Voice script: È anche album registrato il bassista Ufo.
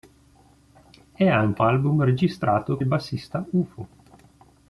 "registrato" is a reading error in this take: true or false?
false